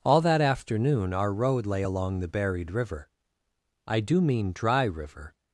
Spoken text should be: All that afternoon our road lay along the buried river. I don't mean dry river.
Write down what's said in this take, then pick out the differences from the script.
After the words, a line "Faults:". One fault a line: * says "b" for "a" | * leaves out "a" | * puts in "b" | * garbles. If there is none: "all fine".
All that afternoon our road lay along the buried river. I do mean dry river.
Faults:
* says "do" for "don't"